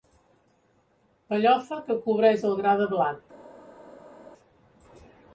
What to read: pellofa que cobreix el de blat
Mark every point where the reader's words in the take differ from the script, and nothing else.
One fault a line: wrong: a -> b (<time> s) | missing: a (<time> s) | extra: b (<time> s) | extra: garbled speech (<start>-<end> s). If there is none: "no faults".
extra: gra (2.6 s)